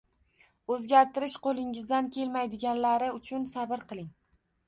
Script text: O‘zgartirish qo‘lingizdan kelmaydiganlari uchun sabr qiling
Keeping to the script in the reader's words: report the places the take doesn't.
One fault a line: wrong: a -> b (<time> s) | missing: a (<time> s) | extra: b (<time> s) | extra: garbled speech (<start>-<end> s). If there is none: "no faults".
no faults